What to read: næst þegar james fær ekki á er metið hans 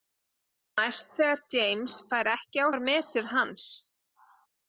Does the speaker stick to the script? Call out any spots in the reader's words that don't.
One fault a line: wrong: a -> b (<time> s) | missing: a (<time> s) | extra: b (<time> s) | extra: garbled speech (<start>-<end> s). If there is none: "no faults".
no faults